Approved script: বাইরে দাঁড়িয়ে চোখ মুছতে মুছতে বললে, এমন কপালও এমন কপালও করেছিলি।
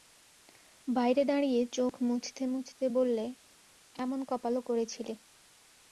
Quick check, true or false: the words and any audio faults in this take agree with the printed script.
false